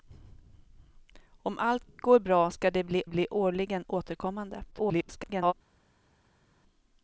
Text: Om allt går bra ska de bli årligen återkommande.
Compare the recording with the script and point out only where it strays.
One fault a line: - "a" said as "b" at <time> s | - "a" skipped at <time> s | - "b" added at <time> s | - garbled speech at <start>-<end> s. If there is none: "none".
- "bli" added at 3.1 s
- garbled speech at 4.7-5.5 s